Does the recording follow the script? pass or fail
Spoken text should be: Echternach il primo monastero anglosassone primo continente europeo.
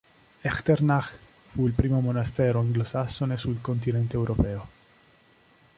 fail